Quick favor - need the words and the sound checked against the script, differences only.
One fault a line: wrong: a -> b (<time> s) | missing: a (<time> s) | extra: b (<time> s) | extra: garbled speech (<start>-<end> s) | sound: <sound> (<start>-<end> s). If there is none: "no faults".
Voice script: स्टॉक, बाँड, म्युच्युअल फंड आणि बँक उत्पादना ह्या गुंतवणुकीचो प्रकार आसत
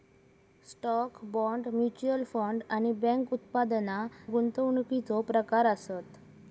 missing: ह्या (4.0 s)